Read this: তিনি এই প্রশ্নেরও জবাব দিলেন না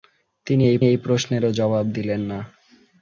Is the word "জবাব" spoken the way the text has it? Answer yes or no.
yes